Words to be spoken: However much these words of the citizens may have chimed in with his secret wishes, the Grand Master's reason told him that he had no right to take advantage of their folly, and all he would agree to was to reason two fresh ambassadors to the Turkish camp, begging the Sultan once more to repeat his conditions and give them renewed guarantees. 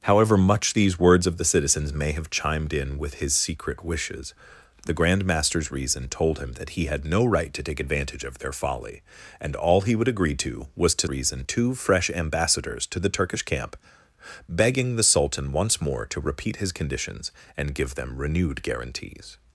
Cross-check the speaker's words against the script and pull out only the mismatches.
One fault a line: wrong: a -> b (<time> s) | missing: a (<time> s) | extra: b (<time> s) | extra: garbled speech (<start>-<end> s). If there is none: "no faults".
no faults